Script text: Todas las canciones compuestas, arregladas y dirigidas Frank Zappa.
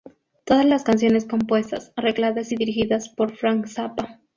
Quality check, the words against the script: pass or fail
fail